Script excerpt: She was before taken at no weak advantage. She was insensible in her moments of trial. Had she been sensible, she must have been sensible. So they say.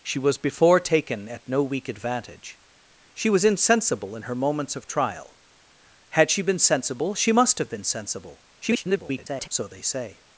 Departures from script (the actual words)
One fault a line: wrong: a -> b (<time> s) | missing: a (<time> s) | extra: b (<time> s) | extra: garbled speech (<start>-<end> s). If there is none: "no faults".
extra: garbled speech (8.6-9.5 s)